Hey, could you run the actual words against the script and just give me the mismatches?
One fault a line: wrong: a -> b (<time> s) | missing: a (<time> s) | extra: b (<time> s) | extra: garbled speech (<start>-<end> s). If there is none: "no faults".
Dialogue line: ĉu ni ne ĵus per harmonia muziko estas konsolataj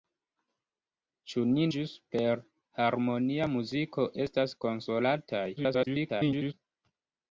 missing: ne (1.7 s)
extra: garbled speech (5.6-6.5 s)